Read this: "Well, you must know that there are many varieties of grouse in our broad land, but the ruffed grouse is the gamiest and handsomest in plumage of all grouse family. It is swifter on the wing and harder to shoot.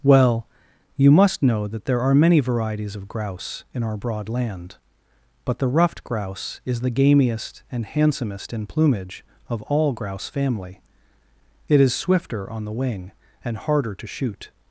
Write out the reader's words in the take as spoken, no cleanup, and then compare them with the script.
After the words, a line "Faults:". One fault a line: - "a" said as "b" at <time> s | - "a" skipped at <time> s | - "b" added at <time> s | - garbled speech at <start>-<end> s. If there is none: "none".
"Well, you must know that there are many varieties of grouse in our broad land, but the ruffed grouse is the gamiest and handsomest in plumage of all grouse family. It is swifter on the wing and harder to shoot.
Faults:
none